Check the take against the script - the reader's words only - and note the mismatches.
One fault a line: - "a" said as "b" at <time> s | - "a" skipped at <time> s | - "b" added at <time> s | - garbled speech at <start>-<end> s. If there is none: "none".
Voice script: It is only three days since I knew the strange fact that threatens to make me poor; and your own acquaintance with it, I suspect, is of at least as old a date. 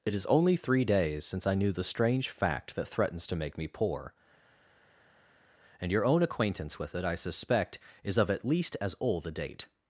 none